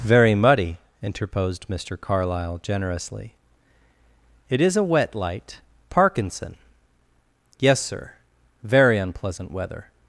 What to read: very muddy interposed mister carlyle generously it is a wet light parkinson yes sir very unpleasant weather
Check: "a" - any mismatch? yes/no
no